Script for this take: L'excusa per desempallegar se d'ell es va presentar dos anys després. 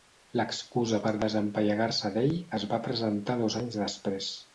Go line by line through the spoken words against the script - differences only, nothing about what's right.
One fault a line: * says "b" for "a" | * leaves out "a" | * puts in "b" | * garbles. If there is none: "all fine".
all fine